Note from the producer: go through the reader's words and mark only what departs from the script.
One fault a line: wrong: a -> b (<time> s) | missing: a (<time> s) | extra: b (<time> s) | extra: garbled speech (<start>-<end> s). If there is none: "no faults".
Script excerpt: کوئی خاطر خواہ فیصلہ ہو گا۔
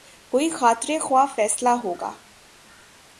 no faults